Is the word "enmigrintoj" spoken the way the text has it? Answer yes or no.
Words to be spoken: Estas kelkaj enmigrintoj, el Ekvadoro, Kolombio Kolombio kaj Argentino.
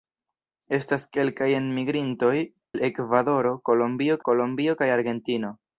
yes